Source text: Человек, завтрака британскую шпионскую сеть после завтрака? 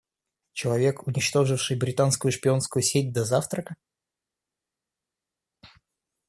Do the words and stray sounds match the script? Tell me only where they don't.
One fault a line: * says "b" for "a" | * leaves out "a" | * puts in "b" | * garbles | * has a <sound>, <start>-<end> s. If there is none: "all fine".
* says "уничтоживший" for "завтрака"
* says "до" for "после"